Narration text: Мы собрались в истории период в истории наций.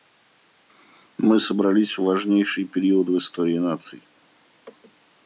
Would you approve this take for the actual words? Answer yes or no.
no